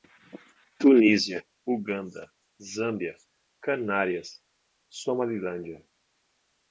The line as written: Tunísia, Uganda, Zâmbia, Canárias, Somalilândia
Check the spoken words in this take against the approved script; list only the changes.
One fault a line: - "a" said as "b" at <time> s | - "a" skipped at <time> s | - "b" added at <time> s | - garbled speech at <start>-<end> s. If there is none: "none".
none